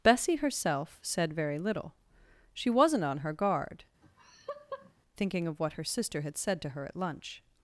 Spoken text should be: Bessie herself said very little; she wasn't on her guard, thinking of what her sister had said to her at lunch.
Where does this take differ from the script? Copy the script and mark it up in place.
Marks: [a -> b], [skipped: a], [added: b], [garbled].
Bessie herself said very little; she wasn't on her guard, thinking of what her sister had said to her at lunch.